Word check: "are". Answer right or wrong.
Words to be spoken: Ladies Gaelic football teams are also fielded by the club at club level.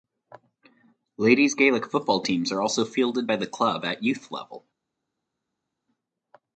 right